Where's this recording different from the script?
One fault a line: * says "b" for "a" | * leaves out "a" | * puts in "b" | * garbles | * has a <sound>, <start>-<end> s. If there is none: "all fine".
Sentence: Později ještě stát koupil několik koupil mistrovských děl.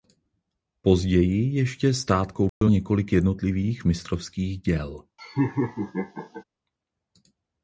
* has a dropout, 2.5-2.6 s
* says "jednotlivých" for "koupil"
* has a laugh, 5.2-6.4 s